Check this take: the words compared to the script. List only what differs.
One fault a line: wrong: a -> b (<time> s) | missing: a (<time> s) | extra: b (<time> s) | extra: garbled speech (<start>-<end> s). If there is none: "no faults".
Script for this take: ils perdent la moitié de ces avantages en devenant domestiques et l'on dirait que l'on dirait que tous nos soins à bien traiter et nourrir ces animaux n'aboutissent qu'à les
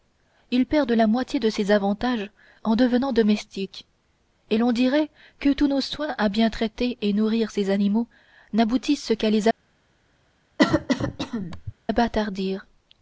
missing: l'on dirait que (5.5 s)